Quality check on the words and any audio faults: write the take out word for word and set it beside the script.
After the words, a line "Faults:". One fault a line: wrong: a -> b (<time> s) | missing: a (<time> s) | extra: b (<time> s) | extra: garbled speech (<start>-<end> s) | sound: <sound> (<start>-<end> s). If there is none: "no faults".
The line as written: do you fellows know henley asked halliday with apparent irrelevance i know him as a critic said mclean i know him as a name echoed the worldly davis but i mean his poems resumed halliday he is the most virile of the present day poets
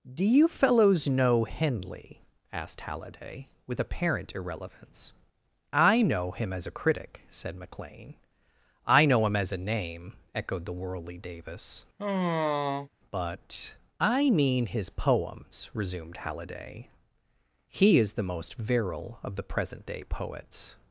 do you fellows know henley asked halliday with apparent irrelevance i know him as a critic said mclean i know him as a name echoed the worldly davis but i mean his poems resumed halliday he is the most virile of the present day poets
Faults:
sound: sigh (12.0-12.9 s)